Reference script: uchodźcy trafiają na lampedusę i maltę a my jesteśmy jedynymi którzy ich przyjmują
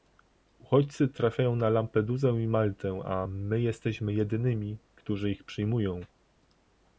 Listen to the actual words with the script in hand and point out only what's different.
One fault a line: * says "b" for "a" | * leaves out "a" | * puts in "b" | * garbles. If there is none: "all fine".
all fine